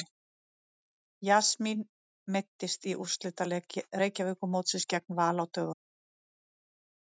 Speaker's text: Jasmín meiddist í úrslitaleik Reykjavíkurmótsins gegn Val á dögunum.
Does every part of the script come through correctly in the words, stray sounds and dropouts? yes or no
yes